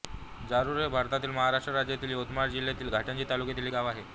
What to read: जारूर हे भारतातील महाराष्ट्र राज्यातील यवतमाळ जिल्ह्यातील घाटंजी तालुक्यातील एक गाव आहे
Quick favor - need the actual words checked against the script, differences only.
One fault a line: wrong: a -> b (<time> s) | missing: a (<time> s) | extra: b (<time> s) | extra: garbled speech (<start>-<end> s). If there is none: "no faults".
missing: एक (3.7 s)